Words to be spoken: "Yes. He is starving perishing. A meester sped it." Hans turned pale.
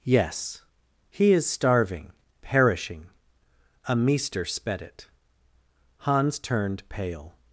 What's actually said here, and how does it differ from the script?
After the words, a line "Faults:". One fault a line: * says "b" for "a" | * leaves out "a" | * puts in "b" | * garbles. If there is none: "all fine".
"Yes. He is starving perishing. A meester sped it." Hans turned pale.
Faults:
all fine